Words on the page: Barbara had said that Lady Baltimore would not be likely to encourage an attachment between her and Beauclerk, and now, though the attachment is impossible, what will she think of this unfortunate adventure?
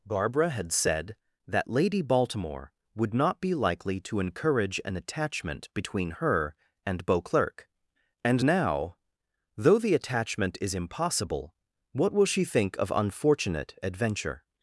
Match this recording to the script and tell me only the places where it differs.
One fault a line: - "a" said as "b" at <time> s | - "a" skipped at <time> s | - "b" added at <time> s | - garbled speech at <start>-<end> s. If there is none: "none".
- "this" skipped at 12.9 s